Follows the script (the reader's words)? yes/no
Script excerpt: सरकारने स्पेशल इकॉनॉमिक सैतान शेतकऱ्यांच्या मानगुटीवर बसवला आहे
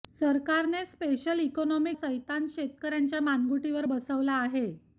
yes